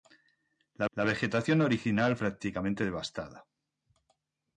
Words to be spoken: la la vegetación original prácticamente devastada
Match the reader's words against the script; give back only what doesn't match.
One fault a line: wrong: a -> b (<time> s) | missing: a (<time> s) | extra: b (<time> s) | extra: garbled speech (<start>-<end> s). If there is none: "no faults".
no faults